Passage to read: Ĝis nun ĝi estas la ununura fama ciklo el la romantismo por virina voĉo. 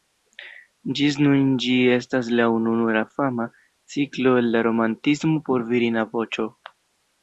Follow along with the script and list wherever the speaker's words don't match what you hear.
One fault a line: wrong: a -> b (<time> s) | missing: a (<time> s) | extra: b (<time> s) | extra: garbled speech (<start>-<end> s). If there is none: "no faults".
no faults